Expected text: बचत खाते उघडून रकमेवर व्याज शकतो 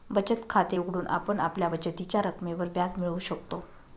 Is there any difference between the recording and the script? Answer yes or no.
yes